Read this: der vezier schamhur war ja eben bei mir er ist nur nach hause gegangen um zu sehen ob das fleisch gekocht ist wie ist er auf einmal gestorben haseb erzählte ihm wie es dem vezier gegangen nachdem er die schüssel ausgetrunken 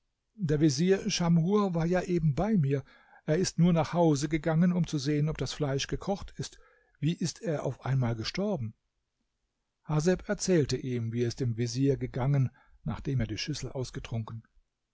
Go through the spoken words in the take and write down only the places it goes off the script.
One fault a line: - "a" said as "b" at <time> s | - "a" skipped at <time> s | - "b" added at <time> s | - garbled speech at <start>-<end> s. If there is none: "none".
none